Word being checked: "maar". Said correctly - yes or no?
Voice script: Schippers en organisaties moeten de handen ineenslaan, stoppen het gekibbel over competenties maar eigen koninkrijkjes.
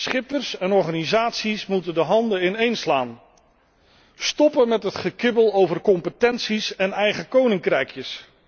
no